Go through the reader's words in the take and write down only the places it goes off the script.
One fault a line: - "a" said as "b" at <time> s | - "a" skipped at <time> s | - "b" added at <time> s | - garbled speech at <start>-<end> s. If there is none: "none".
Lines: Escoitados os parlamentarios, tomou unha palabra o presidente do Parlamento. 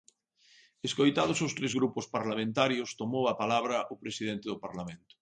- "tres grupos" added at 1.6 s
- "unha" said as "a" at 3.3 s